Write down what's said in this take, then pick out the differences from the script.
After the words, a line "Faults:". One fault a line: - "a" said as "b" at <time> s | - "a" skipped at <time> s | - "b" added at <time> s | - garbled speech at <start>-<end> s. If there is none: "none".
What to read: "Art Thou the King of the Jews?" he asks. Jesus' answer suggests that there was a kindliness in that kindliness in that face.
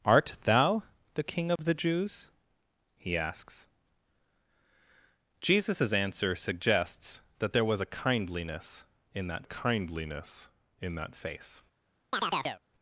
"Art Thou the King of the Jews?" he asks. Jesus' answer suggests that there was a kindliness in that kindliness in that face.
Faults:
none